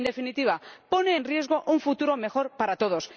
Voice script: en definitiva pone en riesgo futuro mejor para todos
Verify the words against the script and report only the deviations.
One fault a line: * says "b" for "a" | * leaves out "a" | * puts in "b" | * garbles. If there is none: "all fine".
* puts in "un"